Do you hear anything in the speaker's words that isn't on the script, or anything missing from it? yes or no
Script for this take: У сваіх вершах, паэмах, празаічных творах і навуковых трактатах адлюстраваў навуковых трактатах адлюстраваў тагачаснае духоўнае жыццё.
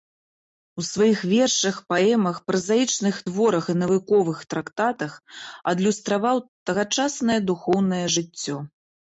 yes